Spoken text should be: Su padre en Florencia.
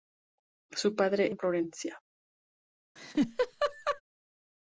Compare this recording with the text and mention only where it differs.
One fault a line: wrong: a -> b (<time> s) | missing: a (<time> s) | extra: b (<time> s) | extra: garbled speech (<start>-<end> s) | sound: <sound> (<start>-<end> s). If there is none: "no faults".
sound: laugh (3.0-4.0 s)